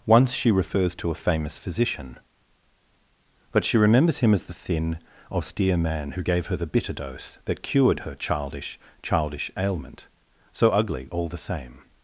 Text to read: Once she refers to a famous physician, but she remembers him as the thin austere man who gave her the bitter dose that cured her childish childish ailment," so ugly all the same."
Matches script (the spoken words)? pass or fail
pass